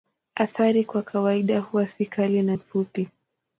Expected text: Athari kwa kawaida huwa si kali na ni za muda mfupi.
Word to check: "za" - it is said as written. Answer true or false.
false